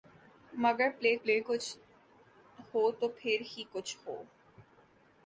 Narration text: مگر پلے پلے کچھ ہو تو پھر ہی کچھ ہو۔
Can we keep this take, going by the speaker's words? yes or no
yes